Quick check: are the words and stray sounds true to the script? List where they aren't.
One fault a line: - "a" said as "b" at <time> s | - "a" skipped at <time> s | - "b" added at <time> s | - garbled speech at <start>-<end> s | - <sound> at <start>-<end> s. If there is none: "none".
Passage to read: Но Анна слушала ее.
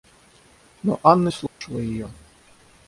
- dropout at 1.5-1.6 s